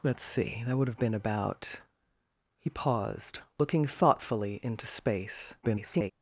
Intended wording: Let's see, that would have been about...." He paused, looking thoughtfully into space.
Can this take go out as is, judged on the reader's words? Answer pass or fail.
fail